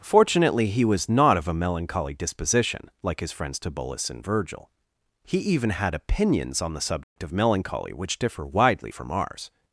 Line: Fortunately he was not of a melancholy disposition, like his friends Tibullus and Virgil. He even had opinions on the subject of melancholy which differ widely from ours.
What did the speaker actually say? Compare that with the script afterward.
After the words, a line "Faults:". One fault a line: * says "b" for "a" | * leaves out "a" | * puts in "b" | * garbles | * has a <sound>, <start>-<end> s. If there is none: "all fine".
Fortunately he was not of a melancholy disposition, like his friends Tibullus and Virgil. He even had opinions on the subject of melancholy which differ widely from ours.
Faults:
* has a dropout, 7.0-7.2 s